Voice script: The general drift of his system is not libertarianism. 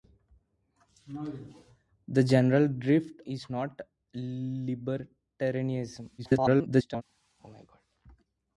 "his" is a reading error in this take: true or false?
true